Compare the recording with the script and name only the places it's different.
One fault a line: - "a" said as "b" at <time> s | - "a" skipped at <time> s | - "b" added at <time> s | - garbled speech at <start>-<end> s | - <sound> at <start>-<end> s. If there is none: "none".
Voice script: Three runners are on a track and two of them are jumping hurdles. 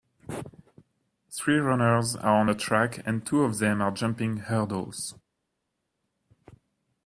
none